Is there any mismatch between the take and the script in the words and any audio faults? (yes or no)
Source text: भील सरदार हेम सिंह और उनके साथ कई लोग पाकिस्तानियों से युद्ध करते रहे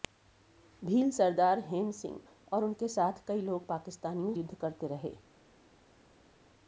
yes